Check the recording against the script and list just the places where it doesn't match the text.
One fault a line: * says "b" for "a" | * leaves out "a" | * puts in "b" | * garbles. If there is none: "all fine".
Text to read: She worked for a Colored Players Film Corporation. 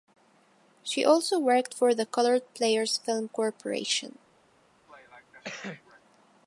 * puts in "also"
* says "the" for "a"